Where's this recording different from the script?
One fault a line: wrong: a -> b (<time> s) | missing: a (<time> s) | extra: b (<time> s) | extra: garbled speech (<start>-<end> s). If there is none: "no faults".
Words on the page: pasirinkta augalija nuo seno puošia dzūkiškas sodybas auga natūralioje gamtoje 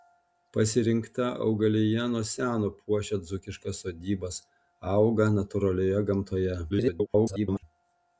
extra: garbled speech (6.7-7.6 s)